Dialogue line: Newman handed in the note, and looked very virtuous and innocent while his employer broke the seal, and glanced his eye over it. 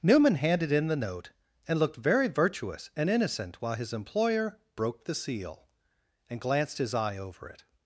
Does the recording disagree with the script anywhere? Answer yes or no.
no